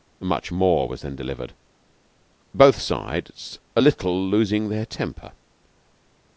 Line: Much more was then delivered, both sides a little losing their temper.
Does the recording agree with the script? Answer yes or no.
yes